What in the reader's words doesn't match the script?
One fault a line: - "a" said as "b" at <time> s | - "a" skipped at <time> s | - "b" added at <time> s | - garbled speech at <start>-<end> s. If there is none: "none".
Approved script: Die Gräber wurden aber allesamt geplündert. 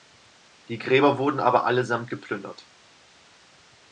none